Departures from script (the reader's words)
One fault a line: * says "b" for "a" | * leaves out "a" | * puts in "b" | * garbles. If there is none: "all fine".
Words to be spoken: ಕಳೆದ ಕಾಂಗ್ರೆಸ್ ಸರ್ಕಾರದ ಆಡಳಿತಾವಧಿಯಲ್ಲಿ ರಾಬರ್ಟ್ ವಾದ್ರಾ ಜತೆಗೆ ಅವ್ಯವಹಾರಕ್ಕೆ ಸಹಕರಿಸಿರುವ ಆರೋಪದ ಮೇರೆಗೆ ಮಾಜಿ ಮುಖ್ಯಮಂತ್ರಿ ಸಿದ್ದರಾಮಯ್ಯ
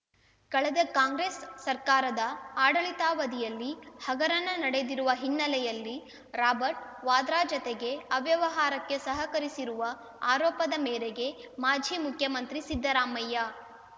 * puts in "ಹಗರಣ ನಡೆದಿರುವ ಹಿನ್ನೆಲೆಯಲ್ಲಿ"